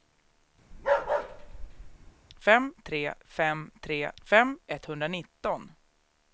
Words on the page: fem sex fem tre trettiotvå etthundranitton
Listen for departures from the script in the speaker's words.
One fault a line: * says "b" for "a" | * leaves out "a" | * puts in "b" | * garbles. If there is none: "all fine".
* says "tre" for "sex"
* says "fem" for "trettiotvå"